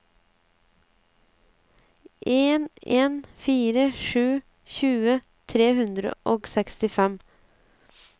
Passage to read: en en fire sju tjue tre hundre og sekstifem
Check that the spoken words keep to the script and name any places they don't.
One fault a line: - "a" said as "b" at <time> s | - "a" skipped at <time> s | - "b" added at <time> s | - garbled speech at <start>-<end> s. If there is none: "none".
none